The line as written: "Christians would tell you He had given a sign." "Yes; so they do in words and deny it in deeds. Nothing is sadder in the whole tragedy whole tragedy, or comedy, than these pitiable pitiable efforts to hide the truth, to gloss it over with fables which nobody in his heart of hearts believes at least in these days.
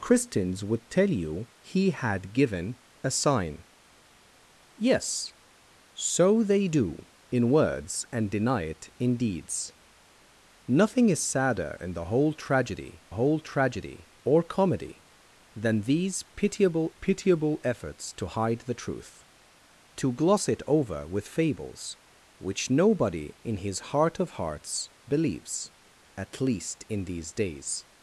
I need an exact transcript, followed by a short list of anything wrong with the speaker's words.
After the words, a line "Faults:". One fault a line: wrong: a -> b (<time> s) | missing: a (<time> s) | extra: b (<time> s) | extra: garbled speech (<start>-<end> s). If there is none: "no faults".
"Christians would tell you He had given a sign." "Yes; so they do in words and deny it in deeds. Nothing is sadder in the whole tragedy whole tragedy, or comedy, than these pitiable pitiable efforts to hide the truth, to gloss it over with fables which nobody in his heart of hearts believes at least in these days.
Faults:
no faults